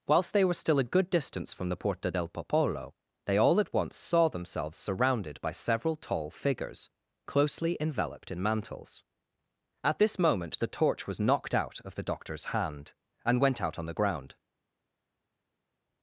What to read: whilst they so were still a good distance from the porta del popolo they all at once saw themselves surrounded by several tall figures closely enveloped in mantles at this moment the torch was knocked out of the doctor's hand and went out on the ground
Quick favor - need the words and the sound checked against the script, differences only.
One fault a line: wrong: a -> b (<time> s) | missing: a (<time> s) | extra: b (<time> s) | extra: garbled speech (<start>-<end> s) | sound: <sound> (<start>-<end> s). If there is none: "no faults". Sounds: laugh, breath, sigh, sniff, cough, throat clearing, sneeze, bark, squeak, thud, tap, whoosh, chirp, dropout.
missing: so (0.5 s)